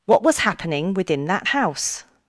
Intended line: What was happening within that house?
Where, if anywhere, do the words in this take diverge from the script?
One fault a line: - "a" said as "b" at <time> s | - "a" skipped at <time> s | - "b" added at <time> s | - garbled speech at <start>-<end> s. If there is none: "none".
none